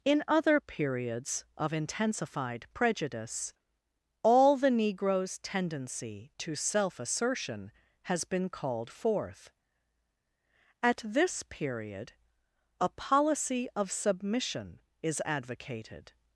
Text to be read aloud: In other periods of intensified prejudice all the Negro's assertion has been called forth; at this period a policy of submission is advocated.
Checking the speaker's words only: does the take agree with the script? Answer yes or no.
no